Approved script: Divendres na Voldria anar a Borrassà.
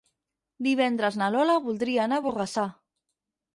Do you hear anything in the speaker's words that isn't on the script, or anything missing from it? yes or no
yes